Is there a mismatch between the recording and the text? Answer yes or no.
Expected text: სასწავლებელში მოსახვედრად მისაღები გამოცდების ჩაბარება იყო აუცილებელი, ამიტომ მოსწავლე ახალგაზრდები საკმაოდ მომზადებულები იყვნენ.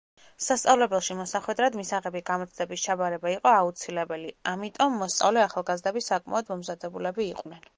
no